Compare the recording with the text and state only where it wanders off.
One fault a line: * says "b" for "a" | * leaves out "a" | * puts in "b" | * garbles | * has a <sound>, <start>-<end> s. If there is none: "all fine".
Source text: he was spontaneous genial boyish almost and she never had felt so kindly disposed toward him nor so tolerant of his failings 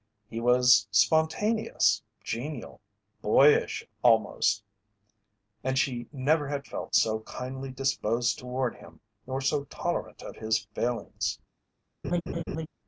* has a laugh, 12.0-12.7 s